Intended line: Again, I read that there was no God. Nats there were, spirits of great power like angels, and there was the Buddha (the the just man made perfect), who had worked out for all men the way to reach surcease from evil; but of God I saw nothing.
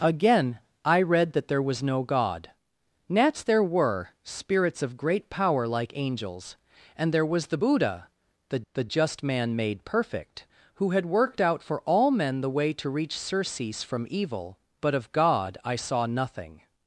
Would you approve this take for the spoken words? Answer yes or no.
yes